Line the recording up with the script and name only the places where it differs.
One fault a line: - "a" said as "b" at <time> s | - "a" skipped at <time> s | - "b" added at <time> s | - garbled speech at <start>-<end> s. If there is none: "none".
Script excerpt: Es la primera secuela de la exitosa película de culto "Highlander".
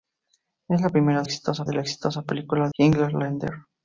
- "secuela" said as "exitosa" at 1.2 s
- "de culto" skipped at 2.7 s